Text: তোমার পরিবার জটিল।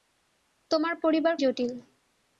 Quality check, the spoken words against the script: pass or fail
pass